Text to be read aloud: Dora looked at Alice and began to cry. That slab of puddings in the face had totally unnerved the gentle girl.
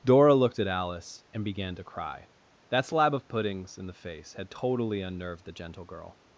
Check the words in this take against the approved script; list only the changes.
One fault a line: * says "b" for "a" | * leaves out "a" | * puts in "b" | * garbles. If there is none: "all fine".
all fine